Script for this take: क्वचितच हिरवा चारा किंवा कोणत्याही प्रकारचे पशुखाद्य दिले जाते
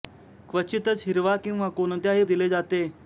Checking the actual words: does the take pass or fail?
fail